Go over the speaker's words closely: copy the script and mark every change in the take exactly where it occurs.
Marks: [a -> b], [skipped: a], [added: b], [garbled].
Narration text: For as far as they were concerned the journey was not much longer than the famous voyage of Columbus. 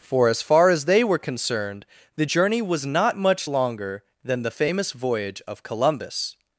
For as far as they were concerned the journey was not much longer than the famous voyage of Columbus.